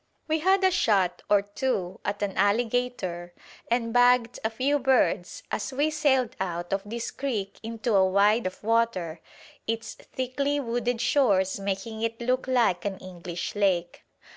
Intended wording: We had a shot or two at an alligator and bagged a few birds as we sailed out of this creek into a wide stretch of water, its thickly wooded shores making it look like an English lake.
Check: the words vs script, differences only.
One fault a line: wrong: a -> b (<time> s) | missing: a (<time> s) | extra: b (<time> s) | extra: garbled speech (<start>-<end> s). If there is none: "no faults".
missing: stretch (8.5 s)